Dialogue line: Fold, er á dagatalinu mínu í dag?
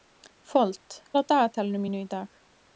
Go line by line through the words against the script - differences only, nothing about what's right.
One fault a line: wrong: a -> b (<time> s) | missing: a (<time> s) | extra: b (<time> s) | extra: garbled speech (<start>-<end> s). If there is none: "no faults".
no faults